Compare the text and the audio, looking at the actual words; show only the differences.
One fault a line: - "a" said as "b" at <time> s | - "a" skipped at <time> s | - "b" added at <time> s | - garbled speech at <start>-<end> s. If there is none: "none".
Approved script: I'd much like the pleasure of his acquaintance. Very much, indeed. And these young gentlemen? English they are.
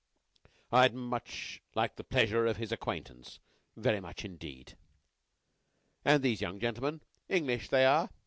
none